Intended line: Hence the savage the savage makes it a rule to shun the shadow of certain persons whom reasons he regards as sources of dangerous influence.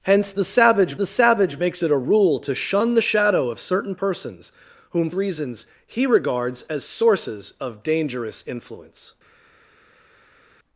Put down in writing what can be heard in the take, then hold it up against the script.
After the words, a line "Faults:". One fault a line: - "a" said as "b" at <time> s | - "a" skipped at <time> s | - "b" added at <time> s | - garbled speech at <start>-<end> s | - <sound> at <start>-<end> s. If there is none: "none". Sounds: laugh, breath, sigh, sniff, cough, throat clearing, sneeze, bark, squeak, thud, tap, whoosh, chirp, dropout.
Hence the savage the savage makes it a rule to shun the shadow of certain persons whom reasons he regards as sources of dangerous influence.
Faults:
none